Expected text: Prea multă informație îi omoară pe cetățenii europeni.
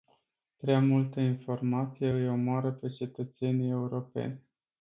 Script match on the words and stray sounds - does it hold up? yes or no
yes